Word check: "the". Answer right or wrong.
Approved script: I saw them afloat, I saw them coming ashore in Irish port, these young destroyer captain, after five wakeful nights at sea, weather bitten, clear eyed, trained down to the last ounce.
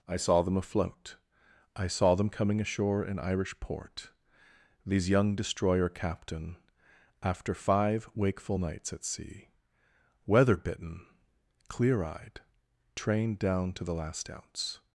right